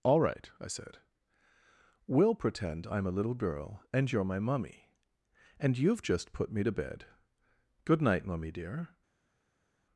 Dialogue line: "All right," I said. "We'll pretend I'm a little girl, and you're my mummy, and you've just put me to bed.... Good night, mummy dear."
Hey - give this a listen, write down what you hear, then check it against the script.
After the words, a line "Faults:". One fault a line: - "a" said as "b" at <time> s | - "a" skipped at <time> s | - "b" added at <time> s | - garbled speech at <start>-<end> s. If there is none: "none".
"All right," I said. "We'll pretend I'm a little girl, and you're my mummy, and you've just put me to bed.... Good night, mummy dear."
Faults:
none